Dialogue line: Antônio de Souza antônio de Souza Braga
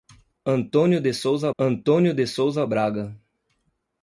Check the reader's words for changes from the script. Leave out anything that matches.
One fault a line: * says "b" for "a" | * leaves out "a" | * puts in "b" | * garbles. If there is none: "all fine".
all fine